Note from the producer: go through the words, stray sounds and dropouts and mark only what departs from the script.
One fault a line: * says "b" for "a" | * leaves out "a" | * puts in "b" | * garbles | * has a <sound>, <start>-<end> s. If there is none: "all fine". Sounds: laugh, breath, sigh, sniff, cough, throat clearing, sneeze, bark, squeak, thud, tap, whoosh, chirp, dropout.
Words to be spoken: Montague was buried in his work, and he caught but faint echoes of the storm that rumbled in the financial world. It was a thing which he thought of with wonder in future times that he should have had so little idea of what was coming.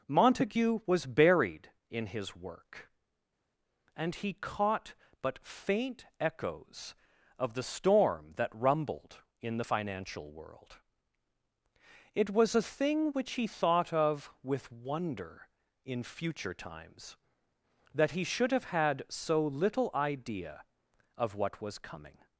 all fine